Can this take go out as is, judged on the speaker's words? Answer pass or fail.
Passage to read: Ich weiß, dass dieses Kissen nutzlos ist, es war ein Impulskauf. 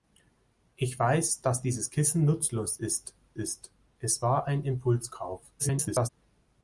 fail